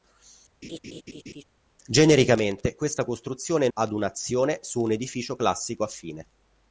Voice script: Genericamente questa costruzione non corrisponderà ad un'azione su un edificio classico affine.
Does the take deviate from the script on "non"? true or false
true